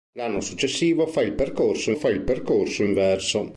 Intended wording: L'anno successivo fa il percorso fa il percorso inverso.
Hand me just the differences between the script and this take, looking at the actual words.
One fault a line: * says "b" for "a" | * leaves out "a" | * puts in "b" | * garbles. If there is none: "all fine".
all fine